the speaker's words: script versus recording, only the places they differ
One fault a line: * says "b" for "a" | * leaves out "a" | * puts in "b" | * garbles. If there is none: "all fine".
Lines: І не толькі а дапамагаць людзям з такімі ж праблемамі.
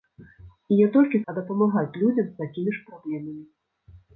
all fine